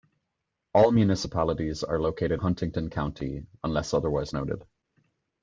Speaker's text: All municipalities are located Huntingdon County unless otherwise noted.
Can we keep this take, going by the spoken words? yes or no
yes